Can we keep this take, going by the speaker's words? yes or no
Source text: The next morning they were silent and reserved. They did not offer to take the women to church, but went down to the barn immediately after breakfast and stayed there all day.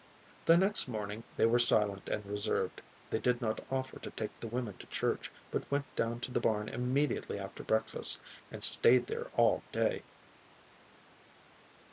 yes